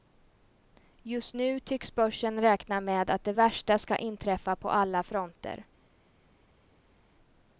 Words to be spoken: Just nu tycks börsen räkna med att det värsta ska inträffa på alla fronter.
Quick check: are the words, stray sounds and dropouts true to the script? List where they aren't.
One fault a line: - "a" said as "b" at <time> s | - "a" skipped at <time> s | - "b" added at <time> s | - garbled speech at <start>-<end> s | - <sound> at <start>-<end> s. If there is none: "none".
none